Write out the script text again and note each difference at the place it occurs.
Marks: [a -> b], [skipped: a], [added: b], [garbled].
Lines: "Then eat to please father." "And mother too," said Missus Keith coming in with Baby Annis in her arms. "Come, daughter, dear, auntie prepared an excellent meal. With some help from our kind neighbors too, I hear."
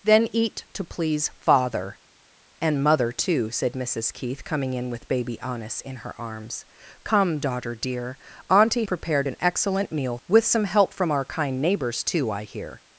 "Then eat to please father." "And mother too," said Missus Keith coming in with Baby Annis in her arms. "Come, daughter, dear, auntie prepared an excellent meal. With some help from our kind neighbors too, I hear."